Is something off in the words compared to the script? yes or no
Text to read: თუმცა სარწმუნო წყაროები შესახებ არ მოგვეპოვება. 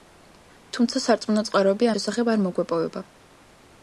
no